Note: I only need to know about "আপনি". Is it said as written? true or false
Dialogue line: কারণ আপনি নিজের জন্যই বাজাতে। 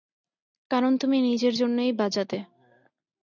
false